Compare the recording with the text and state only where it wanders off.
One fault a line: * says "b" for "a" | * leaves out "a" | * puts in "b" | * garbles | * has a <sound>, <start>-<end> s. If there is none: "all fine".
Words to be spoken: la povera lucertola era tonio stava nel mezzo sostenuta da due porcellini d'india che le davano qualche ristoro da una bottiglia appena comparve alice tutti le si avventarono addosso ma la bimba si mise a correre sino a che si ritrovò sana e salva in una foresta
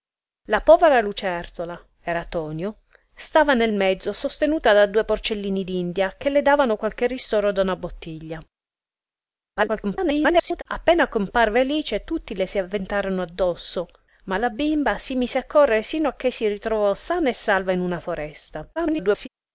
* garbles
* garbles